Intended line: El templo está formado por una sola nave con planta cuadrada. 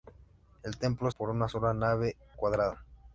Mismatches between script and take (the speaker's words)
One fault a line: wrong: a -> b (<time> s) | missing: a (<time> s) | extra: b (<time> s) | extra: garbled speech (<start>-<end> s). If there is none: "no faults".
missing: está formado (1.1 s)
missing: con planta (2.1 s)